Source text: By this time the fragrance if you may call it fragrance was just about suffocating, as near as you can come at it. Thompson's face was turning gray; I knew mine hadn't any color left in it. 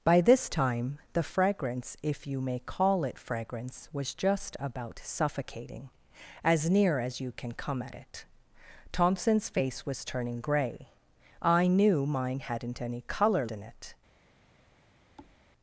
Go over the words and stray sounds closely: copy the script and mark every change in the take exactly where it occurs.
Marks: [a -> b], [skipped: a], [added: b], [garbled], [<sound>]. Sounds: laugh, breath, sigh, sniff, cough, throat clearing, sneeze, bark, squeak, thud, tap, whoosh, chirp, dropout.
By this time the fragrance if you may call it fragrance was just about suffocating, as near as you can come at it. Thompson's face was turning gray; I knew mine hadn't any color [skipped: left] in it. [thud]